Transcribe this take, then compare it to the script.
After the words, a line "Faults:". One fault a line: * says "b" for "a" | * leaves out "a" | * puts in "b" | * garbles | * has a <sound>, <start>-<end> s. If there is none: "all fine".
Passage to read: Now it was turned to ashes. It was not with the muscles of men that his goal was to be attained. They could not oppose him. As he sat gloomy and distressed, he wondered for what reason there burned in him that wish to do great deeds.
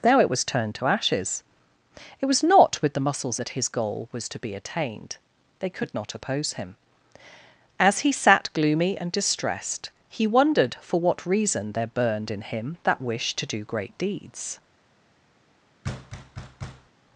Now it was turned to ashes. It was not with the muscles that his goal was to be attained. They could not oppose him. As he sat gloomy and distressed, he wondered for what reason there burned in him that wish to do great deeds.
Faults:
* leaves out "of men"
* has a thud, 15.8-16.9 s